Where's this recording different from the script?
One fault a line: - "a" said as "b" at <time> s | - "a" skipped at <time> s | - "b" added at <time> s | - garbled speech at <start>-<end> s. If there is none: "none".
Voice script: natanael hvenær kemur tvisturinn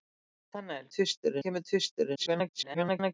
- "hvenær" said as "tvisturinn" at 1.0 s
- garbled speech at 2.1-3.1 s